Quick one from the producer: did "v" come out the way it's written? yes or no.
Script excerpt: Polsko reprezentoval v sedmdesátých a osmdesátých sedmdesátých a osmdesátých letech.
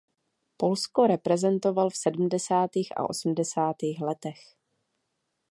yes